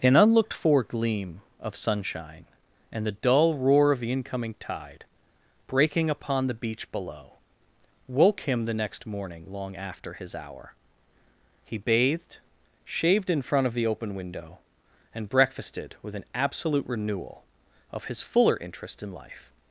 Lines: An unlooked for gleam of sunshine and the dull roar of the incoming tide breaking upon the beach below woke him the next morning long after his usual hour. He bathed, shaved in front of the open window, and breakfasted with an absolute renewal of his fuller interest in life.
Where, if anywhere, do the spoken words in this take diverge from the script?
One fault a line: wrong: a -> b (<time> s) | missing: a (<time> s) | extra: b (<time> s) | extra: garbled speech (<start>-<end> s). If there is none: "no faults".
missing: usual (10.3 s)